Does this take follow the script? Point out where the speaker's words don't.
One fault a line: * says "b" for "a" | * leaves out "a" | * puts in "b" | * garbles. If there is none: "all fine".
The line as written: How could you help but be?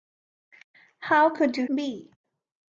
* leaves out "help but"